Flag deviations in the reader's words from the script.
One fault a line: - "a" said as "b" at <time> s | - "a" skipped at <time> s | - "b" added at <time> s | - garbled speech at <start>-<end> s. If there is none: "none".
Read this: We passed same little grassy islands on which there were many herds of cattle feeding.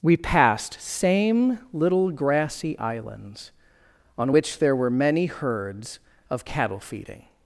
none